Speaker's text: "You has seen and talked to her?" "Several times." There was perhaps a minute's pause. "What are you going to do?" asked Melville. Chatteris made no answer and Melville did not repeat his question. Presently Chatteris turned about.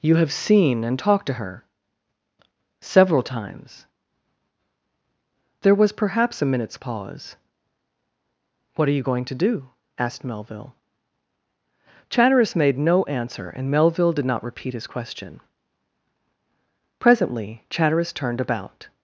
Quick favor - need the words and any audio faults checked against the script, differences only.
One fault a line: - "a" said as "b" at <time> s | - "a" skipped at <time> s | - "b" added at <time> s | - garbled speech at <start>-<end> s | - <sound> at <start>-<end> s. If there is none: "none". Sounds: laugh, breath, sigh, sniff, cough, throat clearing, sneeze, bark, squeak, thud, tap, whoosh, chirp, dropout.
- "has" said as "have" at 0.1 s